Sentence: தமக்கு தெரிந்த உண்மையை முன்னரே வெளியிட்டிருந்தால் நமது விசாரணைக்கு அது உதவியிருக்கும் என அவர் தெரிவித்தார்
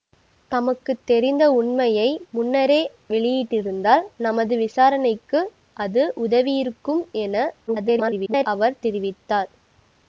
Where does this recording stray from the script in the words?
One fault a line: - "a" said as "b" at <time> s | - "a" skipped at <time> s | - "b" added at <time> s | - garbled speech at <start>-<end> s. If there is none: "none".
- garbled speech at 7.7-8.5 s